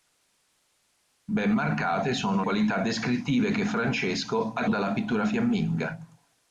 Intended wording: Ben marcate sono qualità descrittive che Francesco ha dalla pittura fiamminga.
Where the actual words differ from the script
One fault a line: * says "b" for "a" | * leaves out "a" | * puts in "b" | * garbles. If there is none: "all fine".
all fine